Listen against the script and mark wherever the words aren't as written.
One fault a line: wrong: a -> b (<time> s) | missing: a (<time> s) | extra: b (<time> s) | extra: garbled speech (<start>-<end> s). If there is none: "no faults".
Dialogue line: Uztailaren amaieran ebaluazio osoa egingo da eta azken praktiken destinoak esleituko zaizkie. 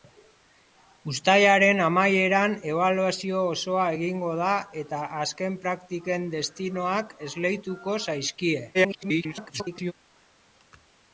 extra: garbled speech (8.7-9.9 s)